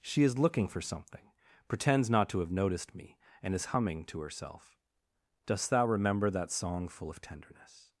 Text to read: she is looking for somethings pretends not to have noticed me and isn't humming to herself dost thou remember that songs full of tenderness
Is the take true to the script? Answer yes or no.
no